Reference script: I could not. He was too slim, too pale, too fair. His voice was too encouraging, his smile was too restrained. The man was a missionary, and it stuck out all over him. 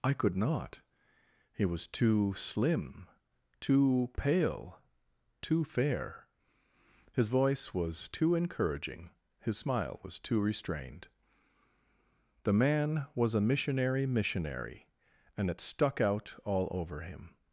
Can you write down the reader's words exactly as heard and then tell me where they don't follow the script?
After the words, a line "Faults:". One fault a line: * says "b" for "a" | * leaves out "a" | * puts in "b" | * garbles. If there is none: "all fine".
I could not. He was too slim, too pale, too fair. His voice was too encouraging, his smile was too restrained. The man was a missionary missionary, and it stuck out all over him.
Faults:
* puts in "missionary"